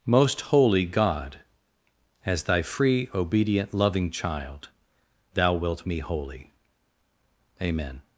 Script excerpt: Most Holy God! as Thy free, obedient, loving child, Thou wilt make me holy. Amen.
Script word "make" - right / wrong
wrong